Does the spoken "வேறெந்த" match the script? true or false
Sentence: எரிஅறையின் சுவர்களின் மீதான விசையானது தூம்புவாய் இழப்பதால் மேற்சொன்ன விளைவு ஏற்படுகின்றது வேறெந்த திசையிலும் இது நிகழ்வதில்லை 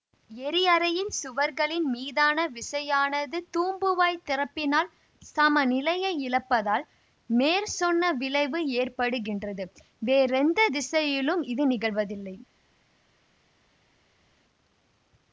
true